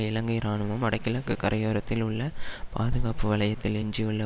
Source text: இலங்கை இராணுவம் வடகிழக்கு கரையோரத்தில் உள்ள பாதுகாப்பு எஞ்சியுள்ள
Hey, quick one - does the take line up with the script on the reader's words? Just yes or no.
no